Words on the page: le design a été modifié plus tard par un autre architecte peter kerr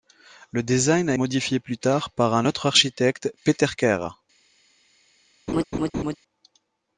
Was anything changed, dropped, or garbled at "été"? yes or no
yes